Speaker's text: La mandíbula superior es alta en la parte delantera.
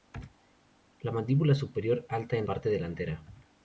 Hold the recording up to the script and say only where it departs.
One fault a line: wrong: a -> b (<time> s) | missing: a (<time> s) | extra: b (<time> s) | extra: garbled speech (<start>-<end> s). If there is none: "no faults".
missing: es (2.0 s)
missing: la (2.5 s)